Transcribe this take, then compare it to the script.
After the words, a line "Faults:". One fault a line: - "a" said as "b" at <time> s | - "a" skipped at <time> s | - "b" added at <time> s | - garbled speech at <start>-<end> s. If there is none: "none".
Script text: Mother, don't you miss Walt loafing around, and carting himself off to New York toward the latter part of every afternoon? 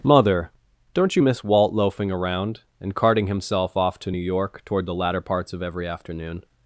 Mother, don't you miss Walt loafing around, and carting himself off to New York toward the latter parts of every afternoon?
Faults:
- "part" said as "parts" at 5.2 s